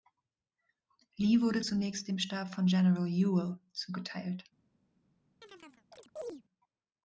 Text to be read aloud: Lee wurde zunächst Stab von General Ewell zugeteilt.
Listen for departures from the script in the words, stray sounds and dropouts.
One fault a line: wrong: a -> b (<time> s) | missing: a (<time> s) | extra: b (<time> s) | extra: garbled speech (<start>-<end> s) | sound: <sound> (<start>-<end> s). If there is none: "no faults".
extra: dem (2.1 s)
sound: chirp (5.4-6.4 s)